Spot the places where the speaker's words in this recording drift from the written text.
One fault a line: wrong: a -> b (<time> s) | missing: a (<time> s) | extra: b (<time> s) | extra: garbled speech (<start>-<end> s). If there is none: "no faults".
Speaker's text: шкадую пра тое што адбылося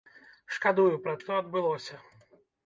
missing: тое (1.1 s)